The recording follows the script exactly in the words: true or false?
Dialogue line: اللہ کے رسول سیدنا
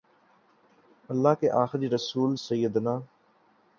false